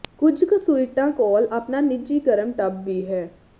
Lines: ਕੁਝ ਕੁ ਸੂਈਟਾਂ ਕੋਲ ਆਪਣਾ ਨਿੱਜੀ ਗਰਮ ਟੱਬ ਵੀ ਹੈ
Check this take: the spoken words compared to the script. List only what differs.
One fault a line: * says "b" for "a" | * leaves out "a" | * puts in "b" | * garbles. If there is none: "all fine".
all fine